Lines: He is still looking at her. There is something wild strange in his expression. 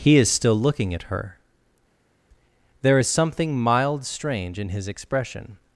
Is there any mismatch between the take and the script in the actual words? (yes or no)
yes